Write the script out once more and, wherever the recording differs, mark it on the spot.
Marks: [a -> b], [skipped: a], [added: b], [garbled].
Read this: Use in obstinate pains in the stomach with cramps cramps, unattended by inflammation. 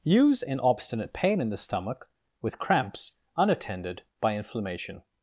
Use in obstinate [pains -> pain] in the stomach with cramps [skipped: cramps,] unattended by inflammation.